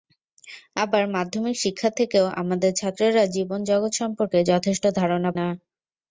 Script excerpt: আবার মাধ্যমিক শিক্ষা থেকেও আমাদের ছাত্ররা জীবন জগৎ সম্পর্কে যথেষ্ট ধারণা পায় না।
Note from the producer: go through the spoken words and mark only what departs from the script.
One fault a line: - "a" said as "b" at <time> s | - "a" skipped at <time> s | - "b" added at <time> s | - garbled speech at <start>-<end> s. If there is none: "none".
- "পায়" skipped at 5.3 s